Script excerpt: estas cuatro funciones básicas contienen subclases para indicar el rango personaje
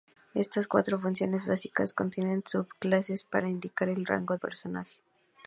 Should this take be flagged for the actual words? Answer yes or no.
no